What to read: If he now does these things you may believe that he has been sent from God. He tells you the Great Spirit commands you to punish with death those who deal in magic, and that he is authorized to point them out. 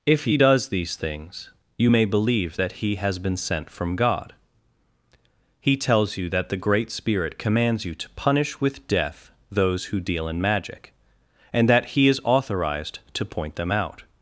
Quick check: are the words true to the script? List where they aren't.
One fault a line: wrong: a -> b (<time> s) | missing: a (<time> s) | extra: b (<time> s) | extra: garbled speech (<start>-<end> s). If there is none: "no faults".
missing: now (0.4 s)
extra: that (6.3 s)